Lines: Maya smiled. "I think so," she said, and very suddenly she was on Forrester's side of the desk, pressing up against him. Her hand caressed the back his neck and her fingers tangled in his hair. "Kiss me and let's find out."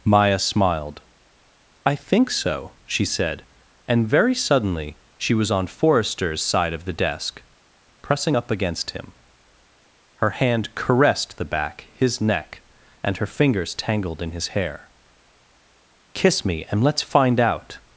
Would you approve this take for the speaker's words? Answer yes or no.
yes